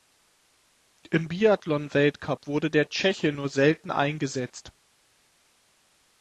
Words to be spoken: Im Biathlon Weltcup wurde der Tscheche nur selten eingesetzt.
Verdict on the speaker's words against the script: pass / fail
pass